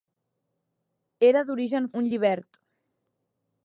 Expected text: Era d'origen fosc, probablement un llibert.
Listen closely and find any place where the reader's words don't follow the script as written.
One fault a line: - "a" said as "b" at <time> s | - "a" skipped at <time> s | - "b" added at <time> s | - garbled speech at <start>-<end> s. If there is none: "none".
- "fosc probablement" skipped at 1.9 s